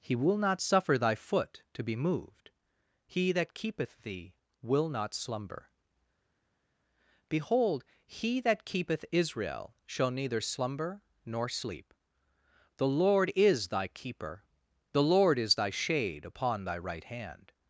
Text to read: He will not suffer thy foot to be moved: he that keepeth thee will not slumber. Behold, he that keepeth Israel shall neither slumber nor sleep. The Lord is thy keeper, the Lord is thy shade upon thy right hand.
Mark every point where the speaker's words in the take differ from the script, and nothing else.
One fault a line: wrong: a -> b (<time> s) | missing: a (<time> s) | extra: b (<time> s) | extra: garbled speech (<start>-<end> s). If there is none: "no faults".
no faults